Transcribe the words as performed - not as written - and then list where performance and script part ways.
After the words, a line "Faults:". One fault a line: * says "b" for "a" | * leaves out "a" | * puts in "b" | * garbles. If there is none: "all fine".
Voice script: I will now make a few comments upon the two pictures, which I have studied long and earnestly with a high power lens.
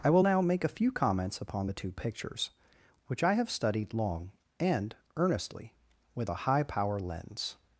I will now make a few comments upon the two pictures, which I have studied long and earnestly with a high power lens.
Faults:
all fine